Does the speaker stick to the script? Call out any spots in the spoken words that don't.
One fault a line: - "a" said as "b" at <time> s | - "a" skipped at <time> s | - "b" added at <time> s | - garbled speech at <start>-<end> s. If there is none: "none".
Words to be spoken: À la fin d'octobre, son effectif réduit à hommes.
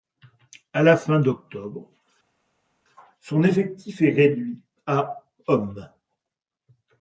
- "est" added at 4.0 s